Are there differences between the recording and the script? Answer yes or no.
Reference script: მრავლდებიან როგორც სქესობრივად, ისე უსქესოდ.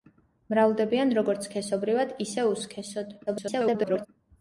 yes